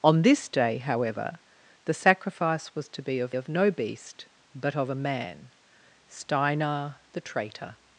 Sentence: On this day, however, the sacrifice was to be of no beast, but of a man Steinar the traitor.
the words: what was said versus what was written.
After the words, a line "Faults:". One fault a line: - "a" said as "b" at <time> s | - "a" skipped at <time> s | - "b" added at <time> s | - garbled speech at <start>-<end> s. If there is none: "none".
On this day, however, the sacrifice was to be of of no beast, but of a man Steinar the traitor.
Faults:
- "of" added at 3.3 s